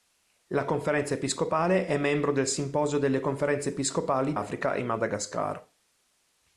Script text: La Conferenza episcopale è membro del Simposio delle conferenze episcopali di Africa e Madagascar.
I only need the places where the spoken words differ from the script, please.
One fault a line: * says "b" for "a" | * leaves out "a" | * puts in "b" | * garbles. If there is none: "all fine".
* leaves out "di"